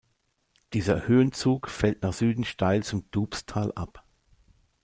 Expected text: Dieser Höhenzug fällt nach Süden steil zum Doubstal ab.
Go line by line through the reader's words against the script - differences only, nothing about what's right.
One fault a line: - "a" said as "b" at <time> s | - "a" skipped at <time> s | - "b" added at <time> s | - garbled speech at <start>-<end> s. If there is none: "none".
none